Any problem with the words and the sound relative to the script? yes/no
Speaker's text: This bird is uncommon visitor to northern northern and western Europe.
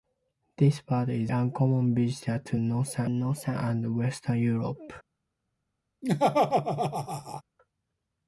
yes